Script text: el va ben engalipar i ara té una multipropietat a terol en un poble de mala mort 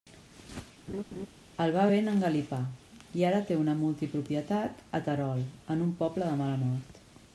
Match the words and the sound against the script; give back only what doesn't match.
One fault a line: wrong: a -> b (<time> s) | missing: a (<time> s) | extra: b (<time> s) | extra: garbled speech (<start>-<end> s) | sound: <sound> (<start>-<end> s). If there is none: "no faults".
sound: laugh (0.9-1.3 s)